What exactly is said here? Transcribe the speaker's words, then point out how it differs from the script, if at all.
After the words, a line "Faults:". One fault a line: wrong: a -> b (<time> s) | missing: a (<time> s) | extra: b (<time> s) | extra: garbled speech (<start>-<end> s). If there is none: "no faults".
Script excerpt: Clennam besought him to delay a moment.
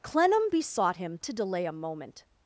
Clennam besought him to delay a moment.
Faults:
no faults